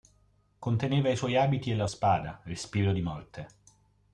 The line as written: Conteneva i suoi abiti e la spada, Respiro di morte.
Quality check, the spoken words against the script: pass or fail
pass